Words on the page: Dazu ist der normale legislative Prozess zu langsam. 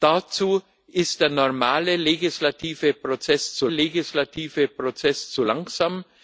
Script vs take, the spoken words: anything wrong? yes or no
yes